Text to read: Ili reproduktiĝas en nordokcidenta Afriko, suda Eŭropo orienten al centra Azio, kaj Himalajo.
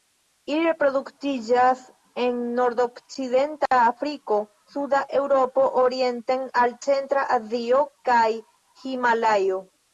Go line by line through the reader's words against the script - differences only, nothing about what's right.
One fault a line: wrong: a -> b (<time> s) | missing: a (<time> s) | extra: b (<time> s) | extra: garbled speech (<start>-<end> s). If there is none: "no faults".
no faults